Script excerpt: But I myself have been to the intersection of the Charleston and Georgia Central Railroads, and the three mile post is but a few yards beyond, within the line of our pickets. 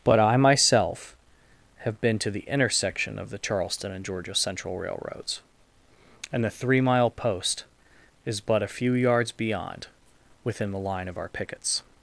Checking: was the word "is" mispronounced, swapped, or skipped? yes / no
no